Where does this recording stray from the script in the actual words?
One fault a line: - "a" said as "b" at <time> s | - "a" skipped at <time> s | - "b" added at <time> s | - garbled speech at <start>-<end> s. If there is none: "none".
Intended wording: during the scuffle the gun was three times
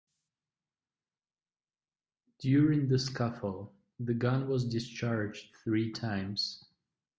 - "discharged" added at 4.7 s